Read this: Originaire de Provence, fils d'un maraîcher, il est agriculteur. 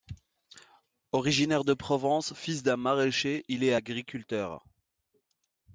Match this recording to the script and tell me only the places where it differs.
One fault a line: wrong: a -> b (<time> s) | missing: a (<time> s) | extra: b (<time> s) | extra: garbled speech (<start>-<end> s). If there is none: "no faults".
no faults